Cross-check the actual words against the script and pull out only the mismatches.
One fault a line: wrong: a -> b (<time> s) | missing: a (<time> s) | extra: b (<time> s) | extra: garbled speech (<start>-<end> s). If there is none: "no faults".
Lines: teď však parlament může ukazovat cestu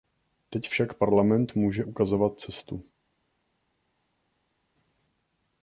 no faults